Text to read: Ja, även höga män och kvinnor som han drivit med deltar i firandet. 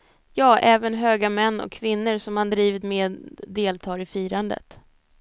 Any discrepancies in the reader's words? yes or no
no